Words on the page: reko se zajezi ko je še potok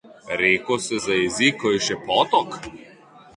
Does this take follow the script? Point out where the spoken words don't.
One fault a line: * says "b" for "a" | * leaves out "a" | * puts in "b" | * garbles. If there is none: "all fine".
all fine